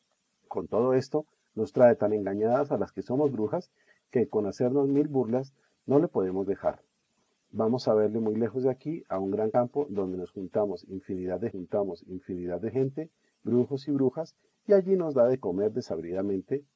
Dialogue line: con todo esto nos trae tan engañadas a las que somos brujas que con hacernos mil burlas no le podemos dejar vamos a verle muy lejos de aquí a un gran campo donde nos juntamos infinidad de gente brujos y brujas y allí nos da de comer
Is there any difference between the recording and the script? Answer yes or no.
yes